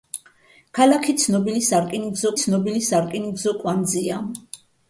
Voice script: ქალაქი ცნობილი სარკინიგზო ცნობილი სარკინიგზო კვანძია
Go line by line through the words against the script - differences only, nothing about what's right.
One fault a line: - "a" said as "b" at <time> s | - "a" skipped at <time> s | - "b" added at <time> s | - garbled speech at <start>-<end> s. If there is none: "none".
none